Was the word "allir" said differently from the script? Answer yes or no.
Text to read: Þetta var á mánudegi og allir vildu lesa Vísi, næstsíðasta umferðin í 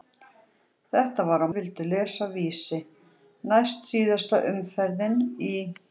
yes